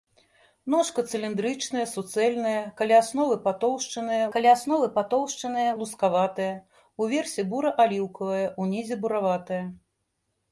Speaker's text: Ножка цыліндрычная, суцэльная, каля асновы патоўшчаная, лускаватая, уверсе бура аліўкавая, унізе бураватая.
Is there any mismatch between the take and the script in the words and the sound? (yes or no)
yes